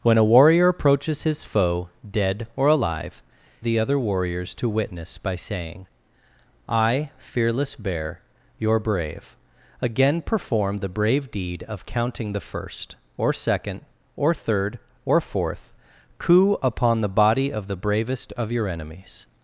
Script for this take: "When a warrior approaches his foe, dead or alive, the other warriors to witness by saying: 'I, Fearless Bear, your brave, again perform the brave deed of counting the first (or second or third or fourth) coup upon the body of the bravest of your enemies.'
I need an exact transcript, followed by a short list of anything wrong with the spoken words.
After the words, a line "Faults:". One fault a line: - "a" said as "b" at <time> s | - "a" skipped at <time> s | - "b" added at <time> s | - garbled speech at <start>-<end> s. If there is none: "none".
"When a warrior approaches his foe, dead or alive, the other warriors to witness by saying: 'I, Fearless Bear, your brave, again perform the brave deed of counting the first (or second or third or fourth) coup upon the body of the bravest of your enemies.'
Faults:
none